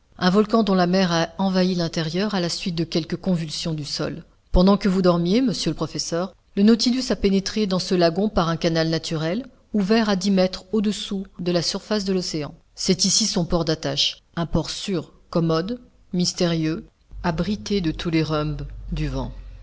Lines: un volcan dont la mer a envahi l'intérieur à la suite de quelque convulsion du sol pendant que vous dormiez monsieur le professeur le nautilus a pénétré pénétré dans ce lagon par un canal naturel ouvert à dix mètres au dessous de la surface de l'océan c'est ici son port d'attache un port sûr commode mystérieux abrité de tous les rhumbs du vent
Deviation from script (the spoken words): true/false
true